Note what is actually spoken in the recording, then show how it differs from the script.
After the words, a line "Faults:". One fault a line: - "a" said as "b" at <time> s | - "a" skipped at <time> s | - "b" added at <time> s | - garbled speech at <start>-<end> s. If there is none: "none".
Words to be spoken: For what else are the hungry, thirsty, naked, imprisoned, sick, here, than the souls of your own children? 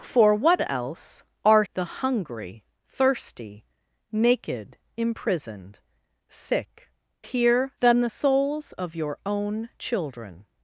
For what else are the hungry, thirsty, naked, imprisoned, sick, here, than the souls of your own children?
Faults:
none